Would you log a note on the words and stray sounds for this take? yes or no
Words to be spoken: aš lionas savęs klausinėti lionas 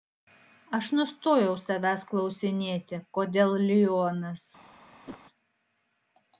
yes